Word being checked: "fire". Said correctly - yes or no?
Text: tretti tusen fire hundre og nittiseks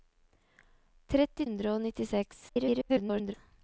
no